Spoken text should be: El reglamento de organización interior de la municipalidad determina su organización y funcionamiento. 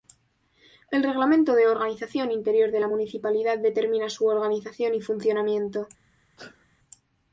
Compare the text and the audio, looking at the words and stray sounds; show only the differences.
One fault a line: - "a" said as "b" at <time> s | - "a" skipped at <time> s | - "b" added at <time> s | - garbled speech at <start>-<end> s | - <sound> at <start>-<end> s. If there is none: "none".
- sneeze at 6.4-6.7 s